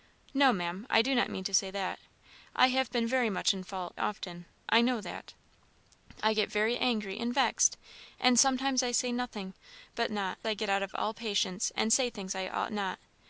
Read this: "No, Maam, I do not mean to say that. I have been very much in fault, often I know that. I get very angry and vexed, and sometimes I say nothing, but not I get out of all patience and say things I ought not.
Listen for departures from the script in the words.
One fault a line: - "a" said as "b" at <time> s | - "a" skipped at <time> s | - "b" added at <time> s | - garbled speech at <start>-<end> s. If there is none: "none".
none